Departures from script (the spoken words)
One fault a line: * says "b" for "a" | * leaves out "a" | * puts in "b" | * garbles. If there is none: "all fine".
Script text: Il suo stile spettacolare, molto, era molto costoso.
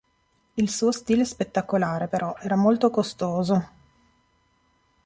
* says "però" for "molto"